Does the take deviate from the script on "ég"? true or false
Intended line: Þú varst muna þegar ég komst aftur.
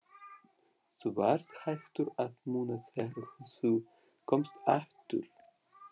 true